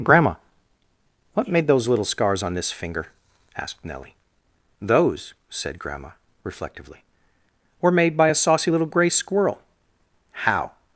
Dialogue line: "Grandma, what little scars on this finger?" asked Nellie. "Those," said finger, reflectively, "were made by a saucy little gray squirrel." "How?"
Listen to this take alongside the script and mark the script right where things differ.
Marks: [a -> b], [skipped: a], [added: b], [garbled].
"Grandma, what [added: made those] little scars on this finger?" asked Nellie. "Those," said [finger, -> grandma] reflectively, "were made by a saucy little gray squirrel." "How?"